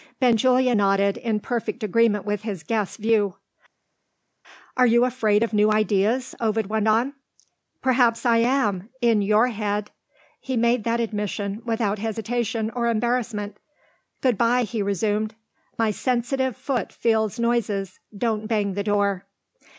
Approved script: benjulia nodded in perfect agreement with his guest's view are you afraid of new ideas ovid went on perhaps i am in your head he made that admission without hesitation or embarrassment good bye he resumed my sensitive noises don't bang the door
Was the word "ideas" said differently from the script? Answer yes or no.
no